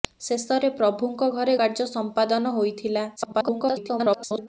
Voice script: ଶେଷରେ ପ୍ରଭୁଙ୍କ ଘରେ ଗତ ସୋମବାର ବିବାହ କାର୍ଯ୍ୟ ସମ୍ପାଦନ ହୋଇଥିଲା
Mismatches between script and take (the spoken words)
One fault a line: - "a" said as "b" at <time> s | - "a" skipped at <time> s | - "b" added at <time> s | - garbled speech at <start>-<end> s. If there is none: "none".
- "ଗତ ସୋମବାର ବିବାହ" skipped at 1.6 s
- garbled speech at 3.2-4.5 s